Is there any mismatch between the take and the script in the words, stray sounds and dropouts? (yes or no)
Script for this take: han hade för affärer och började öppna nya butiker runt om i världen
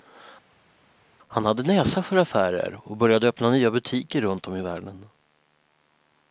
yes